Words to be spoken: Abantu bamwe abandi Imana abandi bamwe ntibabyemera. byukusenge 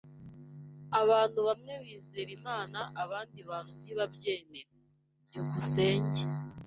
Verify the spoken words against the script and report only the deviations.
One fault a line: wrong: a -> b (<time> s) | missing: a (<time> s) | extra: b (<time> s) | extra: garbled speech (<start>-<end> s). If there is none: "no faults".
wrong: abandi -> bizera (1.8 s)
wrong: bamwe -> bantu (3.5 s)